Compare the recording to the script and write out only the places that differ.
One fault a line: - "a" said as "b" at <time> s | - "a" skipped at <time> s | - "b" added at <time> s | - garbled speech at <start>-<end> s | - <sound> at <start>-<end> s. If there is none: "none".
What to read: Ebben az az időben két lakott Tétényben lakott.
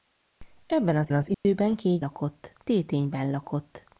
- dropout at 1.3-1.5 s